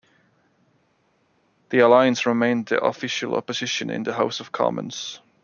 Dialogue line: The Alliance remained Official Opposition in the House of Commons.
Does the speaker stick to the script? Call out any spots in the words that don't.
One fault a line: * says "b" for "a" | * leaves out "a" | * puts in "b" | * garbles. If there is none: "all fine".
* puts in "the"